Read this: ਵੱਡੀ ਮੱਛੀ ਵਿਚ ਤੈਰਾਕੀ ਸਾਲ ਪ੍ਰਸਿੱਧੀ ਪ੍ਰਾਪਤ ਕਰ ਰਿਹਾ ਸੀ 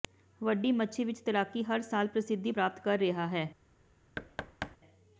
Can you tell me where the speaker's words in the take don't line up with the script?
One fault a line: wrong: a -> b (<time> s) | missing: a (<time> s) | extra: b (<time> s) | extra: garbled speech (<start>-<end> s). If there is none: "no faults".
extra: ਹਰ (1.6 s)
wrong: ਸੀ -> ਹੈ (3.3 s)